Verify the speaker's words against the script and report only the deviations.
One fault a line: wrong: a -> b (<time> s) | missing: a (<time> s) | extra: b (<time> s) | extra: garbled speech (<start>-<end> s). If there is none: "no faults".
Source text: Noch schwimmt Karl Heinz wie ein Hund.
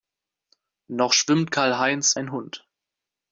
missing: wie (2.2 s)